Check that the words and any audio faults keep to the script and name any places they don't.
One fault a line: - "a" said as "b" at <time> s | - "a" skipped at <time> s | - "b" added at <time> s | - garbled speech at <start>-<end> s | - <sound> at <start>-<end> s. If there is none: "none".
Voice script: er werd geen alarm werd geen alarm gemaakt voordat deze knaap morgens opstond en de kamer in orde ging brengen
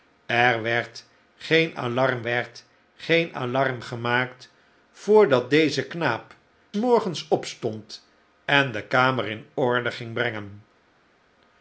none